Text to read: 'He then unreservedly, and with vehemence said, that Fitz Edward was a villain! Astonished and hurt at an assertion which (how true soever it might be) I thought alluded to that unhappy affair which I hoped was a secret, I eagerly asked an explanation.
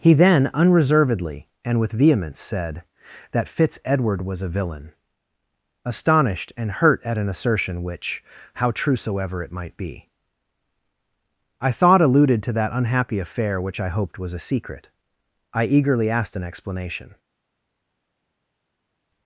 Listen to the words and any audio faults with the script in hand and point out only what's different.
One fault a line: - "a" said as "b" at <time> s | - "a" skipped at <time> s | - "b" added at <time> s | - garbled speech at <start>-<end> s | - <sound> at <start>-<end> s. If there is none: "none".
none